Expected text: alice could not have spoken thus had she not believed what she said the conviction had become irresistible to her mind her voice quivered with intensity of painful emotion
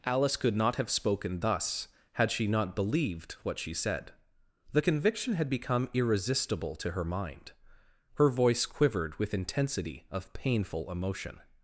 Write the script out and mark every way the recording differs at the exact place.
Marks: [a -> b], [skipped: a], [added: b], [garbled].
alice could not have spoken thus had she not believed what she said the conviction had become irresistible to her mind her voice quivered with intensity of painful emotion